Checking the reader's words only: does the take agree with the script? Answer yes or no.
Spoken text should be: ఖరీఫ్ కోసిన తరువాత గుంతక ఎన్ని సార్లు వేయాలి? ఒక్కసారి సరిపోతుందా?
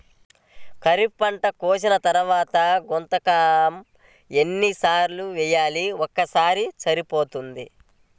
no